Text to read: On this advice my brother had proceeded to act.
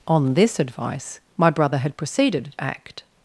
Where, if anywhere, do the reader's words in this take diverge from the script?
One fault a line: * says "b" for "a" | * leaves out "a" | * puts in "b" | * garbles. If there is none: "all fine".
* leaves out "to"